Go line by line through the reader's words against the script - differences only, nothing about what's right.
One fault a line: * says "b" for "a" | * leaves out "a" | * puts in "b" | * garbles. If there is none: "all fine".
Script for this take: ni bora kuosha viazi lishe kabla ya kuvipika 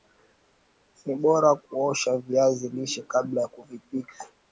all fine